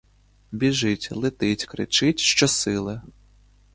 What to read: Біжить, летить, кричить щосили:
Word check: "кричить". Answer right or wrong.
right